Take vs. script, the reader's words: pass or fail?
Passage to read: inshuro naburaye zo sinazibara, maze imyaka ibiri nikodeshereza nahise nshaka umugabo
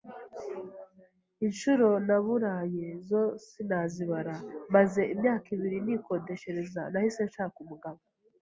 pass